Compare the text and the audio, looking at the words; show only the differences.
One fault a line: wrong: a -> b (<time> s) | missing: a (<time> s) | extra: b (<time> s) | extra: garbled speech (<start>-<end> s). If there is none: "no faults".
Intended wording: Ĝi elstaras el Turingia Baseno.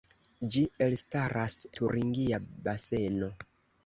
missing: el (1.6 s)